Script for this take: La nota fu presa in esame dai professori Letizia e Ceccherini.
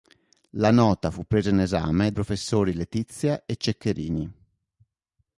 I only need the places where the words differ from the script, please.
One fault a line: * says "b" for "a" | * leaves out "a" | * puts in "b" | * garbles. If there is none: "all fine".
* leaves out "dai"